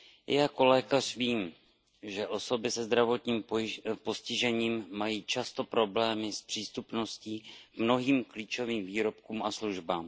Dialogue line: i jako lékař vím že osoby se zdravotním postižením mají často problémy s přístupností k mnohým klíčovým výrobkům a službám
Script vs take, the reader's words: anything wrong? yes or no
no